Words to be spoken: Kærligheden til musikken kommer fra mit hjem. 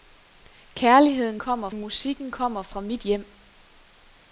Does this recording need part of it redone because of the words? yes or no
yes